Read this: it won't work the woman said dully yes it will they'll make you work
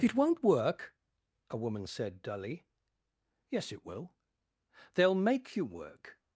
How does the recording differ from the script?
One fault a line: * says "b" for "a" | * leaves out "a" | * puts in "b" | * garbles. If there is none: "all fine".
* says "a" for "the"